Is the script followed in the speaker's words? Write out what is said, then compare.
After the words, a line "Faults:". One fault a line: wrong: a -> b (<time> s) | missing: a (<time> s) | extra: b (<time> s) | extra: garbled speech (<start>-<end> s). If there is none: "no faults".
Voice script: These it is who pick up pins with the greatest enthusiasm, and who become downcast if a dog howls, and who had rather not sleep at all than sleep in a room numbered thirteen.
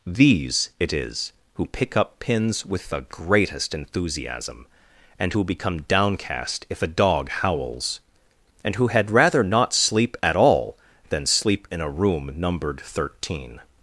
These it is who pick up pins with the greatest enthusiasm, and who become downcast if a dog howls, and who had rather not sleep at all than sleep in a room numbered thirteen.
Faults:
no faults